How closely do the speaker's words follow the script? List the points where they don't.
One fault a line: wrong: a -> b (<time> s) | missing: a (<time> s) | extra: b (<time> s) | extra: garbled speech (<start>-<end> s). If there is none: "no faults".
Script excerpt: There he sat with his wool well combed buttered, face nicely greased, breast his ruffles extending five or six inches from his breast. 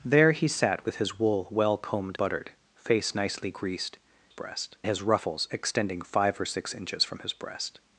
no faults